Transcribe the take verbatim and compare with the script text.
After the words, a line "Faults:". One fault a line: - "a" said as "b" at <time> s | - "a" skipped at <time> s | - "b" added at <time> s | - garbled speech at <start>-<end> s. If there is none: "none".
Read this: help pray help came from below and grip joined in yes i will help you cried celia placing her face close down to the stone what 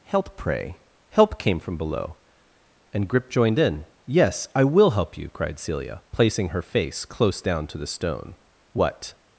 help pray help came from below and grip joined in yes i will help you cried celia placing her face close down to the stone what
Faults:
none